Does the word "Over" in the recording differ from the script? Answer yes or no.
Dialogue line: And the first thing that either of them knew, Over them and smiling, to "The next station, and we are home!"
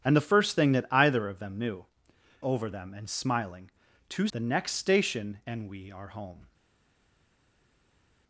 no